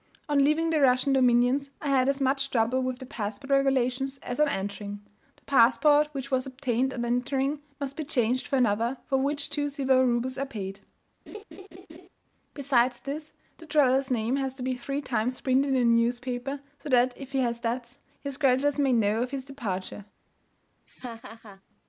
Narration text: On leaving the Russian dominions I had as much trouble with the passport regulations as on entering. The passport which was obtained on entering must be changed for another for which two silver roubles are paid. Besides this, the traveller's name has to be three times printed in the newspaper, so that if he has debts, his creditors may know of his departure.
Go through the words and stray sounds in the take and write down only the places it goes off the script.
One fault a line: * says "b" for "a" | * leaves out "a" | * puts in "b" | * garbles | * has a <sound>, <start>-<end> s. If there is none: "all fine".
* has a laugh, 11.3-12.1 s
* has a laugh, 20.9-21.6 s